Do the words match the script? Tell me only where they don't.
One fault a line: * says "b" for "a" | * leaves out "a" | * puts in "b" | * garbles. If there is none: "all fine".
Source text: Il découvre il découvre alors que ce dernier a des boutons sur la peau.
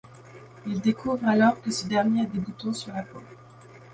* leaves out "il découvre"